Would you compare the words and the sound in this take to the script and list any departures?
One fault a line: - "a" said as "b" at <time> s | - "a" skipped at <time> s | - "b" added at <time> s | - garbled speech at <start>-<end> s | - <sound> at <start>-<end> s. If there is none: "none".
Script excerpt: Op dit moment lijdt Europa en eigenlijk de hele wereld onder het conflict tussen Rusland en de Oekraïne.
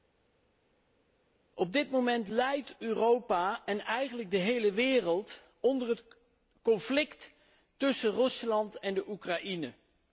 none